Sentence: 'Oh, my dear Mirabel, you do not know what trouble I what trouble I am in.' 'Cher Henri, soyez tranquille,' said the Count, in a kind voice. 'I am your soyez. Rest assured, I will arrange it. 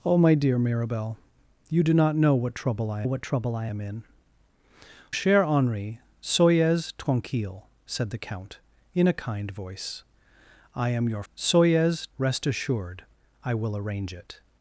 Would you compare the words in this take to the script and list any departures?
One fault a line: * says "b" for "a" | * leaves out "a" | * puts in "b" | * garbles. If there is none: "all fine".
all fine